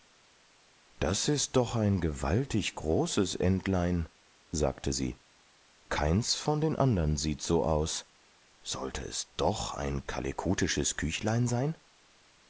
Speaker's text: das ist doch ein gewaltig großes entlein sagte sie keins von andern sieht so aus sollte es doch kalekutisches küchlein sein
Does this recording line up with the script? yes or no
no